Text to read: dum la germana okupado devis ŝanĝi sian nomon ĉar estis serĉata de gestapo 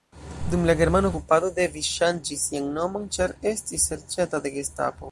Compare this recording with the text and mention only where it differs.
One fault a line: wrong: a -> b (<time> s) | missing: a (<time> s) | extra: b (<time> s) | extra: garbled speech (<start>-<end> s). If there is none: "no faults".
no faults